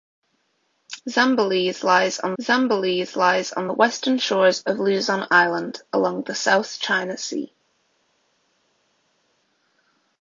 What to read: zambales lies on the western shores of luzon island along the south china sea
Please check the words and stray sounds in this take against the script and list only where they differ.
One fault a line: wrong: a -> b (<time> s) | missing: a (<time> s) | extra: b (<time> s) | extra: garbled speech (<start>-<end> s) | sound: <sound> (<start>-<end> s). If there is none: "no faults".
extra: zambales lies on (2.4 s)